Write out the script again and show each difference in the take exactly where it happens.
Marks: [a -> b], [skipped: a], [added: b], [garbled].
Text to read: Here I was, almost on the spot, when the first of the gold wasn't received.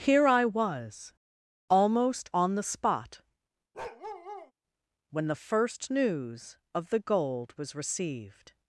Here I was, almost on the spot, when the first [added: news] of the gold [wasn't -> was] received.